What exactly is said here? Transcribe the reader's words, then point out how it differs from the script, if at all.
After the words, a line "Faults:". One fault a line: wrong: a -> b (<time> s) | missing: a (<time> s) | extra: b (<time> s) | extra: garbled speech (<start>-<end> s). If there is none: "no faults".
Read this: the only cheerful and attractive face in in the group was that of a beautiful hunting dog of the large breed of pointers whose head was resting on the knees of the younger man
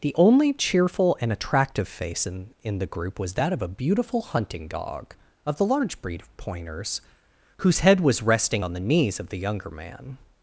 the only cheerful and attractive face in in the group was that of a beautiful hunting dog of the large breed of pointers whose head was resting on the knees of the younger man
Faults:
no faults